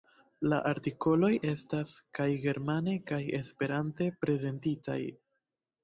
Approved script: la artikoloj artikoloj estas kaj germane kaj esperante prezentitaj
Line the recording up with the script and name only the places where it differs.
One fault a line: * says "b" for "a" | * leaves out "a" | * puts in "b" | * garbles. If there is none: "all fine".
* leaves out "artikoloj"